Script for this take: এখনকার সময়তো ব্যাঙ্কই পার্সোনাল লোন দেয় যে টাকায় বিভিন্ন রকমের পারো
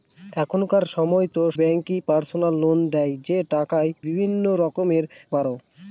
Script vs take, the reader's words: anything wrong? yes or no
no